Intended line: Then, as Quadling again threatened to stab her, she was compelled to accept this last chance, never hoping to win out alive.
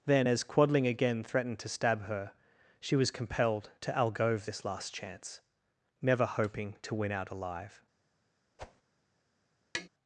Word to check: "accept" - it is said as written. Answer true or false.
false